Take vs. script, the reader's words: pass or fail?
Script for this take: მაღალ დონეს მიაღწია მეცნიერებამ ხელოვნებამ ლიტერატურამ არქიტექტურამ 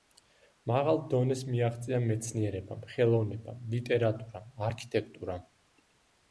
pass